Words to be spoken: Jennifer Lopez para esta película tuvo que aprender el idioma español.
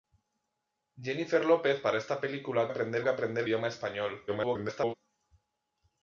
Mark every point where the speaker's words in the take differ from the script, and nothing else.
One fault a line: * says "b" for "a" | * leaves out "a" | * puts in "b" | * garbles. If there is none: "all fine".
* says "aprender" for "tuvo"
* leaves out "el"
* garbles